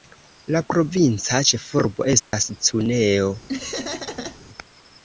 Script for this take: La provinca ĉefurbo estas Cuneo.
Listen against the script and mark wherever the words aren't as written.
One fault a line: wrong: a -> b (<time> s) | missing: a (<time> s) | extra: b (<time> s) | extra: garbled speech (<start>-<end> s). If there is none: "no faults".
no faults